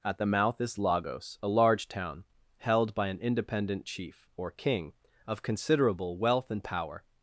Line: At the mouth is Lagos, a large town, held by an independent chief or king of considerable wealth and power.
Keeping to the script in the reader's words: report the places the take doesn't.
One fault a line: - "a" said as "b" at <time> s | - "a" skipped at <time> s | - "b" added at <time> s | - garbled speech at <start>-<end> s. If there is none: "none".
none